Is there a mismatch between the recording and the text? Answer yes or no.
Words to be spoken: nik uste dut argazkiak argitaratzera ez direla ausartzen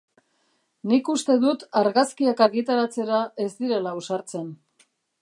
no